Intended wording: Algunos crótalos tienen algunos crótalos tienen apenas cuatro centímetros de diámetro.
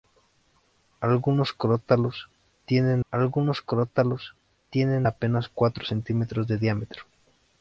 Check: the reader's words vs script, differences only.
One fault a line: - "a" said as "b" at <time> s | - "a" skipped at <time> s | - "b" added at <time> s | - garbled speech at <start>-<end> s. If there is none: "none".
none